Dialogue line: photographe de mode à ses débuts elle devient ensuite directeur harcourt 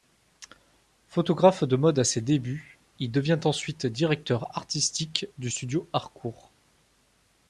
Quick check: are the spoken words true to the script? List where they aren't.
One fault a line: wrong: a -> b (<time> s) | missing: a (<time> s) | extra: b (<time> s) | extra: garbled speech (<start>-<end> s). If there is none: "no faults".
wrong: elle -> il (3.0 s)
extra: artistique du studio (4.6 s)